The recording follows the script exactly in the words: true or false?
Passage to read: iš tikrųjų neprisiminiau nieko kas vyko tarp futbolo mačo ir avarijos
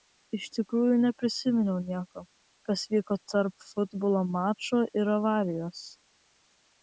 true